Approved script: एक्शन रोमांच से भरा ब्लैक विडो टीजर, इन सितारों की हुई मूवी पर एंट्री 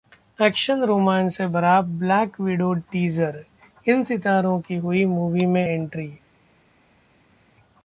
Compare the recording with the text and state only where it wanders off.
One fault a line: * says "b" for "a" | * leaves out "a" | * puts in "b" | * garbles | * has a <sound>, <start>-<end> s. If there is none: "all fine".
* says "में" for "पर"